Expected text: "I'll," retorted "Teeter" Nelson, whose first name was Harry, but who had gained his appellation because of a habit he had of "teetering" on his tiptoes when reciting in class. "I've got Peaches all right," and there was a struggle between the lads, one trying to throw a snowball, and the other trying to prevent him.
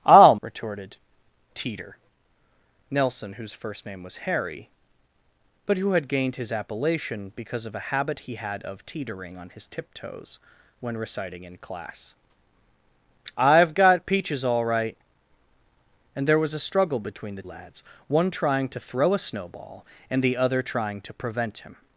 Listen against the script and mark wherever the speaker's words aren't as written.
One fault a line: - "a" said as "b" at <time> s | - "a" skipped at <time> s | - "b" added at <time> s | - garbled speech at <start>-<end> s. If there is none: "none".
none